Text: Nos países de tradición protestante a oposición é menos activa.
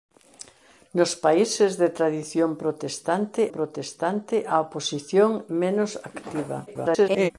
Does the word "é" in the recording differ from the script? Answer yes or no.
yes